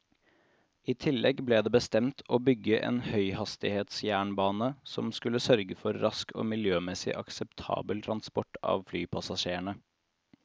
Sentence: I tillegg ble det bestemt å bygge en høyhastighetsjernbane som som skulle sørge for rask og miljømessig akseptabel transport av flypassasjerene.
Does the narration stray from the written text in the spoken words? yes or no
yes